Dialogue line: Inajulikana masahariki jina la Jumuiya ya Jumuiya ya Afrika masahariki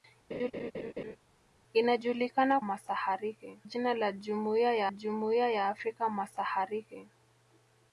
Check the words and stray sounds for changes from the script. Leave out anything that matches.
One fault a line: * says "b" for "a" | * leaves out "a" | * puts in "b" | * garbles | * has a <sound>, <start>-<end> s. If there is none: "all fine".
* has a laugh, 0.3-1.2 s